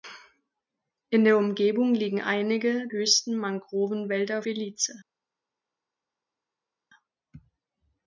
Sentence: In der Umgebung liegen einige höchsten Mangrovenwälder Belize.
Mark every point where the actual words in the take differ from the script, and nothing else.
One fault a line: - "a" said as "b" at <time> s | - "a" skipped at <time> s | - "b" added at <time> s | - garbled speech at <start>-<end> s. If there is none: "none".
none